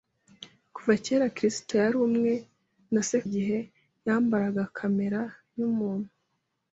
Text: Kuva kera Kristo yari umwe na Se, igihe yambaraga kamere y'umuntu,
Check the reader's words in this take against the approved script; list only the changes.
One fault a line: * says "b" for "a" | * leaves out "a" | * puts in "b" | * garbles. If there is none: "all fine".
all fine